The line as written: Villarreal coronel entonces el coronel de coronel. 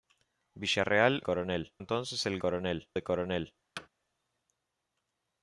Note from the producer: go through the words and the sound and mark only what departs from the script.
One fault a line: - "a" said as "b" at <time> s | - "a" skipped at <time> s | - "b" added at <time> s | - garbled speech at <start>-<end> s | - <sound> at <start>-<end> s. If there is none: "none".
- thud at 3.8-3.9 s